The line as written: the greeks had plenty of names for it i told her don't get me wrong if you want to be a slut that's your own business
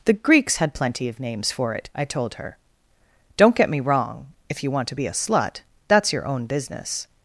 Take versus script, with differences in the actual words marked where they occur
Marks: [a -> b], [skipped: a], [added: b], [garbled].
the greeks had plenty of names for it i told her don't get me wrong if you want to be a slut that's your own business